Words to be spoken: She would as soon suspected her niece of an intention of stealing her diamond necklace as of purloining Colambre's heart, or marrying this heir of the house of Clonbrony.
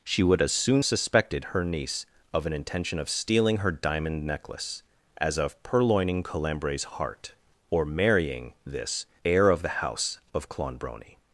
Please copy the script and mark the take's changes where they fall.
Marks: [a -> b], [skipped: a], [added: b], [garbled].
She would as soon suspected her niece of an intention of stealing her diamond necklace as of purloining Colambre's heart, or marrying this heir of the house of Clonbrony.